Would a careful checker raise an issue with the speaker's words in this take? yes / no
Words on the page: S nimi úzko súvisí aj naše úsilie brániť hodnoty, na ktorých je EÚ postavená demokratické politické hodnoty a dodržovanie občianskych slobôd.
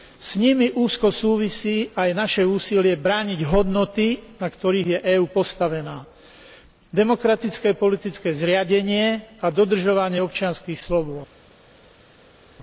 yes